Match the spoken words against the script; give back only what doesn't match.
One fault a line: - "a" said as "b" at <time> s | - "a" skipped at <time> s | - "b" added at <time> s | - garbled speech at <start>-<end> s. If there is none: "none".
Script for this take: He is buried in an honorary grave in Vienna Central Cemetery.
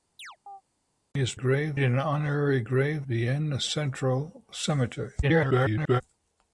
- "buried" said as "grave" at 1.3 s
- "in" skipped at 3.0 s
- garbled speech at 5.2-6.0 s